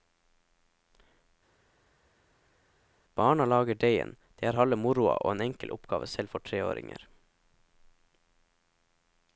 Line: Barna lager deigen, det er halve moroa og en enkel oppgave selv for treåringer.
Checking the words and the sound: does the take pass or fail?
pass